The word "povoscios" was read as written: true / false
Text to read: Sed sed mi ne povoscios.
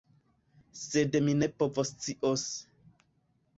true